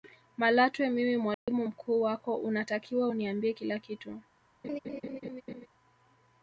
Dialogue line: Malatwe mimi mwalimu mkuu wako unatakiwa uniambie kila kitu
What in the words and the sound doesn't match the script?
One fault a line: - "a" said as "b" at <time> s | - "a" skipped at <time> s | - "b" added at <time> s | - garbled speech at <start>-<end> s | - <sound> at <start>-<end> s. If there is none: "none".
- dropout at 1.3-1.5 s
- laugh at 4.6-5.7 s